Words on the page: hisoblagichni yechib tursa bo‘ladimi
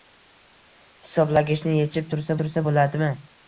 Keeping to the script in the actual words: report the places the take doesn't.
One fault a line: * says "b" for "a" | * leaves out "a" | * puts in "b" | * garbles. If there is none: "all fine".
* puts in "tursa"